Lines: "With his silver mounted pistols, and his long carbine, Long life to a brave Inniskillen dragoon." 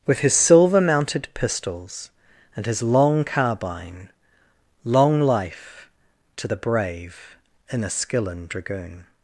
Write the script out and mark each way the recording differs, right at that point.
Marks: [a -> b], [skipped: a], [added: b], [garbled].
"With his silver mounted pistols, and his long carbine, Long life to [a -> the] brave Inniskillen dragoon."